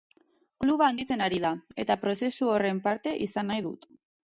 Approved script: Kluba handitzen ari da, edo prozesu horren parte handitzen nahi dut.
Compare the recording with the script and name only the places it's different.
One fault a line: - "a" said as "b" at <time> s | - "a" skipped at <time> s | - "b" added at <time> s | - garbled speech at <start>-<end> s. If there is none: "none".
- "edo" said as "eta" at 1.9 s
- "handitzen" said as "izan" at 3.3 s